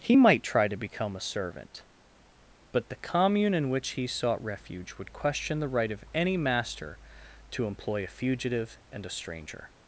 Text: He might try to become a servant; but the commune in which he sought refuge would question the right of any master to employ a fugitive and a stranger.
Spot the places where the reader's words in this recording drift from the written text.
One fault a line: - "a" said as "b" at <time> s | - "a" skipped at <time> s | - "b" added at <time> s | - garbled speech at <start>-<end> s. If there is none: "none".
none